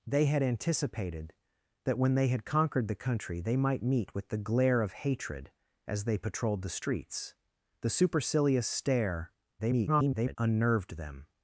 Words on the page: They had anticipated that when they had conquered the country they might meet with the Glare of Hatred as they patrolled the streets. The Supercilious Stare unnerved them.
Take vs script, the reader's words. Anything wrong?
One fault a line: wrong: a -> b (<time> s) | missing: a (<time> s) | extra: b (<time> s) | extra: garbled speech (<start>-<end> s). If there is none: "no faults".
extra: garbled speech (9.6-10.4 s)